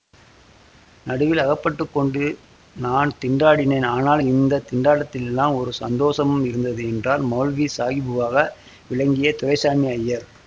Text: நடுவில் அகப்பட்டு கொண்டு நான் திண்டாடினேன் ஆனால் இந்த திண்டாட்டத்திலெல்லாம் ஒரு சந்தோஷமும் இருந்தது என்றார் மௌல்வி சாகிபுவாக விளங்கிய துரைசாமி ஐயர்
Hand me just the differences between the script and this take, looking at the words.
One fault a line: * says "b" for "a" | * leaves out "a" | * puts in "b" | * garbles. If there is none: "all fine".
all fine